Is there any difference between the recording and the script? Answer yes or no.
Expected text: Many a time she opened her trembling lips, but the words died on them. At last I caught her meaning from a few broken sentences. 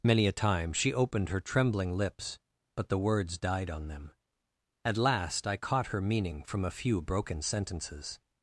no